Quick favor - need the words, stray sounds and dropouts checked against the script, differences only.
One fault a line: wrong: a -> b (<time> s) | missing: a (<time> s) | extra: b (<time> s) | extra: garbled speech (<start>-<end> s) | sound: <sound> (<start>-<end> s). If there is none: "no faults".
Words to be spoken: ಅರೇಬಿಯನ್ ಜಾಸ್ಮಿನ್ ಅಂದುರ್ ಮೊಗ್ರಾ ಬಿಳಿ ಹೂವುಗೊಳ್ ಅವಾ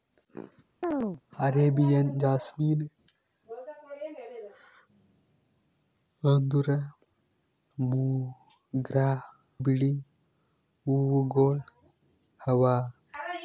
sound: chirp (0.8-1.2 s)